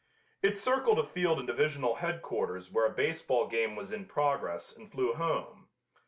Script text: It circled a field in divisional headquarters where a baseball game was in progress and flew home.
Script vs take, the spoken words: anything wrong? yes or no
no